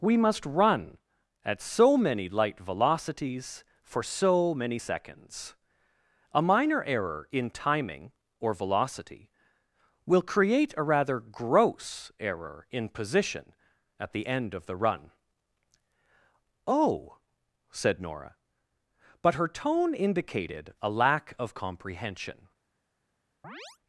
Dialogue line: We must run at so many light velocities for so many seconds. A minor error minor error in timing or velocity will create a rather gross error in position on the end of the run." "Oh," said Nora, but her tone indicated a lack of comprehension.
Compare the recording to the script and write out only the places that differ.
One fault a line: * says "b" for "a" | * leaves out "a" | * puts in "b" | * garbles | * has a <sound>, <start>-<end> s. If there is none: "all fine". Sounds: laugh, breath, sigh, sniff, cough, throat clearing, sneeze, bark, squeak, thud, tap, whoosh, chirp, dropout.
* leaves out "minor error"
* says "at" for "on"
* has a chirp, 23.4-23.8 s